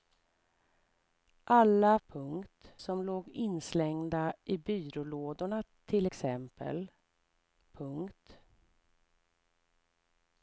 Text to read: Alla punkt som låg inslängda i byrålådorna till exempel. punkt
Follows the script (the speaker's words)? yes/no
yes